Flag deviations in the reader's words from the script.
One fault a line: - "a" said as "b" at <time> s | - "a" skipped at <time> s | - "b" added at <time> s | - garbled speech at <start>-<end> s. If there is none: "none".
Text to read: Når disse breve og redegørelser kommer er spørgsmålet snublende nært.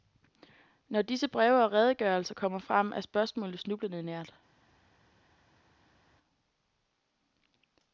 - "frem" added at 2.6 s